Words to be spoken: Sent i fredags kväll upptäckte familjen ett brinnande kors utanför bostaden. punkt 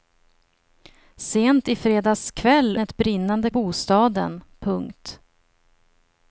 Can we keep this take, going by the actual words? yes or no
no